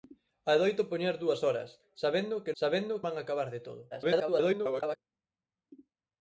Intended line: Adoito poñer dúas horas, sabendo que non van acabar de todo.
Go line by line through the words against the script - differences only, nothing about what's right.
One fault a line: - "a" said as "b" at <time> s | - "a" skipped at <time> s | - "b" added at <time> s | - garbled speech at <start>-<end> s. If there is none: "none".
- "non" said as "sabendo" at 2.6 s
- garbled speech at 3.9-5.0 s